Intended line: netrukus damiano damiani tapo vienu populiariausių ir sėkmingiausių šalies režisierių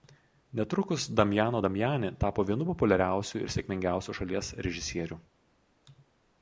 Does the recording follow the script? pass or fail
pass